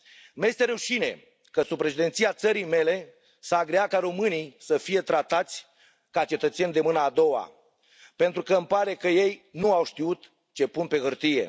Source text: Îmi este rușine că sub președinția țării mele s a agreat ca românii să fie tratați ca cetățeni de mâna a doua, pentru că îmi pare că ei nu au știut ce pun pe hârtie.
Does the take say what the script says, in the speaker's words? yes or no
yes